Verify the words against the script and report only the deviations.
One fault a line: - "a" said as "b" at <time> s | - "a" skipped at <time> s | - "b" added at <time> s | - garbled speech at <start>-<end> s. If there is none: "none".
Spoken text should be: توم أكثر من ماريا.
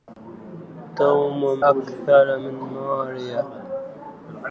none